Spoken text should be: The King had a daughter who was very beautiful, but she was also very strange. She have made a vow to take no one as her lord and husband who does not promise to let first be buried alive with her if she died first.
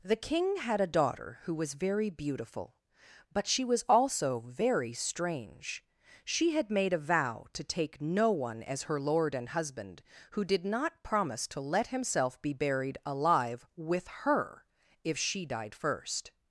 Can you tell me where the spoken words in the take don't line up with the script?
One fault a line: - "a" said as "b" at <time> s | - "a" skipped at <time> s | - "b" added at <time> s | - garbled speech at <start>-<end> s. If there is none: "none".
- "have" said as "had" at 6.5 s
- "does" said as "did" at 10.4 s
- "first" said as "himself" at 11.9 s